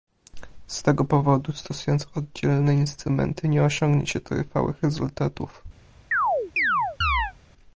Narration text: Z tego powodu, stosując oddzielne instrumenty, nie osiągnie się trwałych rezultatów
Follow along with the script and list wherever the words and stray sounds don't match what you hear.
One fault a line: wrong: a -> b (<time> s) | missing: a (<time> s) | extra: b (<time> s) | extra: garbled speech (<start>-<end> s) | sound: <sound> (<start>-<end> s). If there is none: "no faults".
sound: chirp (6.1-7.3 s)